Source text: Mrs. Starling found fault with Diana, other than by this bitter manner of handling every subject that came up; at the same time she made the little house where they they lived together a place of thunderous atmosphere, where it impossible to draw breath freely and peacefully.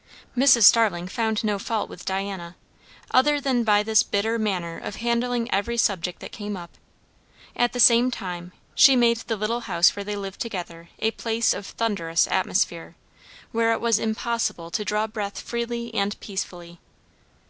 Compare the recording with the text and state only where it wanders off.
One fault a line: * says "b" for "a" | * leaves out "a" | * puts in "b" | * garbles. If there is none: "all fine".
* puts in "no"
* leaves out "they"
* puts in "was"